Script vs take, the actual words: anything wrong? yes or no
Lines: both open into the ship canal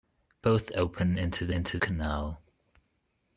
yes